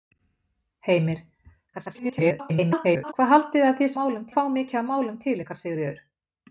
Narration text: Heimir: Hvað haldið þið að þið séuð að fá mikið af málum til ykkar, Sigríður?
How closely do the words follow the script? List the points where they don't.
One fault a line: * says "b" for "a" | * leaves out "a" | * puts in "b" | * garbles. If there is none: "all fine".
* garbles
* says "málum" for "séuð"